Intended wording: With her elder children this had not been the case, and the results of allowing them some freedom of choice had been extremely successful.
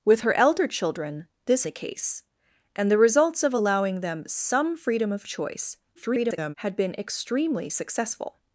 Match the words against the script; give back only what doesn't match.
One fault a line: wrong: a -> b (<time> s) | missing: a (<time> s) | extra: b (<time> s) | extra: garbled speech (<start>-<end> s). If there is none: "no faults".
missing: had not been (1.6 s)
extra: garbled speech (6.0-6.5 s)